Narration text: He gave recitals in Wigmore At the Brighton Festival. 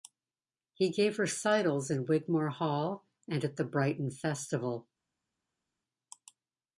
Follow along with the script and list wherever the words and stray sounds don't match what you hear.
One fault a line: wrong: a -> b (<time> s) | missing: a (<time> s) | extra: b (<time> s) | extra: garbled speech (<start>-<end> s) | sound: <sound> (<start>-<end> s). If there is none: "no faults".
extra: Hall and (2.5 s)